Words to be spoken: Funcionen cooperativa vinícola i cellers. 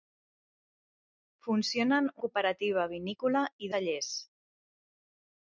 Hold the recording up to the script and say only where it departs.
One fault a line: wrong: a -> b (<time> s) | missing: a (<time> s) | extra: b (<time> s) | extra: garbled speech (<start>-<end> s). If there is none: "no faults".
no faults